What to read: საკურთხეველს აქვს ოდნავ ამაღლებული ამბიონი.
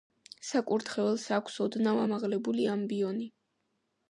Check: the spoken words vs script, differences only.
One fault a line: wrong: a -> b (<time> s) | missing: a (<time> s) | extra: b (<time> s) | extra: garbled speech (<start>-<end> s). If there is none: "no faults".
no faults